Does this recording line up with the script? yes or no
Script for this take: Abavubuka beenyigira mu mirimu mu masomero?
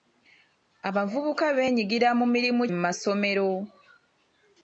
yes